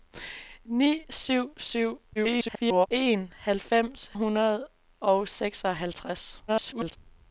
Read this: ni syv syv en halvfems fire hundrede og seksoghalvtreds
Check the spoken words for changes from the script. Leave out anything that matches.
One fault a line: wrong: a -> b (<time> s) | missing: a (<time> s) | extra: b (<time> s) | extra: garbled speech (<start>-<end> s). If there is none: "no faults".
extra: garbled speech (2.2-2.9 s)
missing: fire (4.1 s)
extra: garbled speech (6.5-7.0 s)